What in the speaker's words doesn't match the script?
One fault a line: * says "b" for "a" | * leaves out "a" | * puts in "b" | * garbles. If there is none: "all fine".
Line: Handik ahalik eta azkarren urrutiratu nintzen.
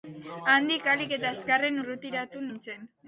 all fine